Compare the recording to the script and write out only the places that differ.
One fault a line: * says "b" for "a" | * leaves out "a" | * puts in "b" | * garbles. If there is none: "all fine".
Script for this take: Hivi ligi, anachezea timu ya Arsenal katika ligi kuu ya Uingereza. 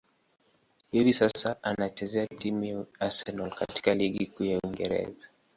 * says "sasa" for "ligi"